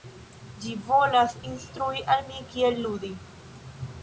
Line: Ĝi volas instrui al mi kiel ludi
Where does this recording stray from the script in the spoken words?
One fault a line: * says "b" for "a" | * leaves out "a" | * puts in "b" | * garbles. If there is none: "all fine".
all fine